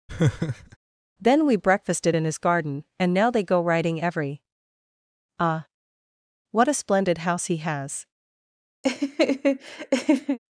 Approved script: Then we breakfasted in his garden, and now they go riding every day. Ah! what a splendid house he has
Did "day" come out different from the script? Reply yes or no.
yes